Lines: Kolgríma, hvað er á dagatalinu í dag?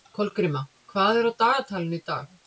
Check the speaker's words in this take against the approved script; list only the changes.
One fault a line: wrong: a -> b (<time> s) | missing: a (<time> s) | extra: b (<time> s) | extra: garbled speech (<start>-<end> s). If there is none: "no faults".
no faults